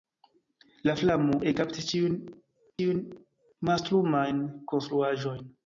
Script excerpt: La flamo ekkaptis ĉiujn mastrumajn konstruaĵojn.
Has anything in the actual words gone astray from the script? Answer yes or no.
yes